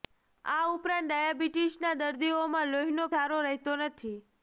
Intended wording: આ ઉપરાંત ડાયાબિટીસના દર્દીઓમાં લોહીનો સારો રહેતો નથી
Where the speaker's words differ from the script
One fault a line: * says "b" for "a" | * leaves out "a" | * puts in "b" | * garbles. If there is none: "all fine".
all fine